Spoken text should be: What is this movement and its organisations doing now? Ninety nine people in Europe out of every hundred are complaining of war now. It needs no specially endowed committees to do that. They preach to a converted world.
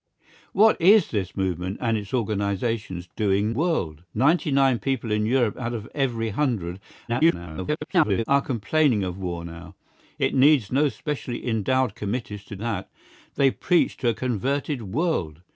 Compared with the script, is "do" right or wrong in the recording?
wrong